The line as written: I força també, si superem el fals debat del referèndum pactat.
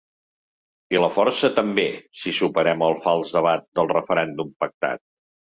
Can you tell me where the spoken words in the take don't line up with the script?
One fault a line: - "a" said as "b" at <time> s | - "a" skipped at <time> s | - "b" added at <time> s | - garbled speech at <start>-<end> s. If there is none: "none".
- "la" added at 1.0 s